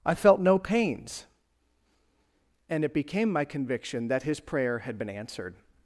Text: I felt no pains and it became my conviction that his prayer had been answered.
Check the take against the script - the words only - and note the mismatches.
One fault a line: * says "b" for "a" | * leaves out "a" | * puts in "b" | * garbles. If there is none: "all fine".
all fine